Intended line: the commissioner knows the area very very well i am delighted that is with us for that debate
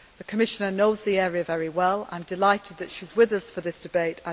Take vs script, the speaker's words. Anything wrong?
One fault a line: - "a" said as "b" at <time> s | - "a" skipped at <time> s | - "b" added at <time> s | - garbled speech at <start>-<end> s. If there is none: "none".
- "very" skipped at 1.7 s
- "she" added at 2.9 s
- "that" said as "this" at 3.6 s